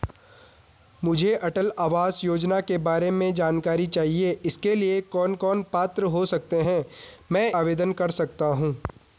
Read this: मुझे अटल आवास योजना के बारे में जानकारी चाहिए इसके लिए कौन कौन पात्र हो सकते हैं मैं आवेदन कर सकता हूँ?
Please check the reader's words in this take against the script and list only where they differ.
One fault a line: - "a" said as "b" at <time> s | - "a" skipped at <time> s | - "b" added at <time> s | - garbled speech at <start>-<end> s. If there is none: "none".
none